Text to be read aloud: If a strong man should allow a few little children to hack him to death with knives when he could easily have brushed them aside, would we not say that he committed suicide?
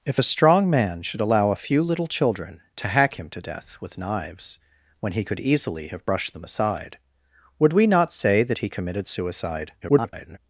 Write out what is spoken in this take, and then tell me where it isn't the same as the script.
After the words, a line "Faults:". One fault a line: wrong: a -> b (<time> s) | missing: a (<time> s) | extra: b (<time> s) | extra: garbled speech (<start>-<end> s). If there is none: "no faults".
If a strong man should allow a few little children to hack him to death with knives when he could easily have brushed them aside, would we not say that he committed suicide? [garbled]
Faults:
extra: garbled speech (9.8-10.4 s)